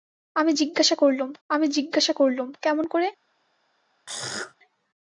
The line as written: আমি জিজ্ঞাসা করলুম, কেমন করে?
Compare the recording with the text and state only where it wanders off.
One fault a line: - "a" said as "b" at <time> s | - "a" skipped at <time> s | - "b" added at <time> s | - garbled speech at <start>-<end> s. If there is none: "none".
- "আমি জিজ্ঞাসা করলুম" added at 1.5 s